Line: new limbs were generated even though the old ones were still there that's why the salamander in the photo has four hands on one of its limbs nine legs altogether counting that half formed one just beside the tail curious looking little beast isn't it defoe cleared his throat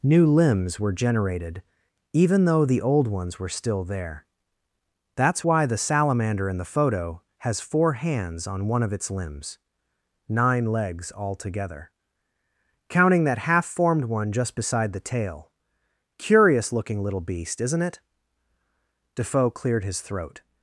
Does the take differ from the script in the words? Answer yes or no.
no